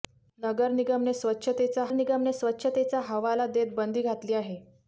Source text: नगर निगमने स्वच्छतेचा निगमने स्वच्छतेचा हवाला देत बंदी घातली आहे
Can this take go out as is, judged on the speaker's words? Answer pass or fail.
pass